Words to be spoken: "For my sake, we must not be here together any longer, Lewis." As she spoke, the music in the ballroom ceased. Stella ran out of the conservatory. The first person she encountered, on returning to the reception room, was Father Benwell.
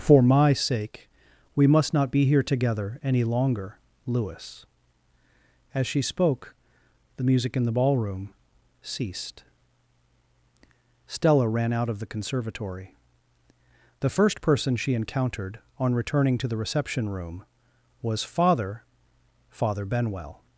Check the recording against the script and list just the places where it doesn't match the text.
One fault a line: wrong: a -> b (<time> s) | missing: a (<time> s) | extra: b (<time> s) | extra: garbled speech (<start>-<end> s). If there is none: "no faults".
extra: Father (19.5 s)